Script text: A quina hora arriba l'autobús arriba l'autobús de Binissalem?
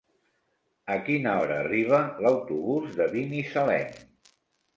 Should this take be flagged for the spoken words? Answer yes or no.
yes